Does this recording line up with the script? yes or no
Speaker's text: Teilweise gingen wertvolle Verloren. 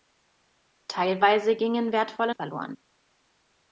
yes